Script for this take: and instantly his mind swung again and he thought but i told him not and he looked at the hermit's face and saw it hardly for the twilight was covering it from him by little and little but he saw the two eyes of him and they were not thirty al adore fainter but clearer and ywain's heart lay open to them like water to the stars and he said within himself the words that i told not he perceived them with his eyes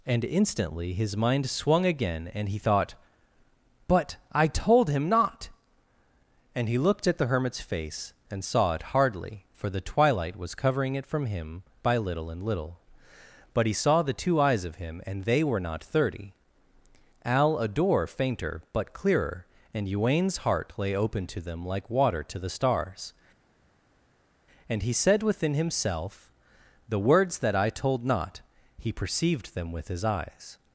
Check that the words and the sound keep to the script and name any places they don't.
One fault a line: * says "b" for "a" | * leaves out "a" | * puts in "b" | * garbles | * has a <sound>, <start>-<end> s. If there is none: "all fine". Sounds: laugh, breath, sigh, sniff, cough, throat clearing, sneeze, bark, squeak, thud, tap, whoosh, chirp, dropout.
all fine